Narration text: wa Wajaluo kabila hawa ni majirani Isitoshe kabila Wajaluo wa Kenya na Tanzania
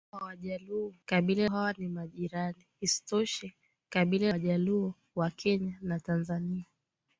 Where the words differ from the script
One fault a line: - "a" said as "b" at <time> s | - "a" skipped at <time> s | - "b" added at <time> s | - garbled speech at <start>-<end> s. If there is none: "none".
none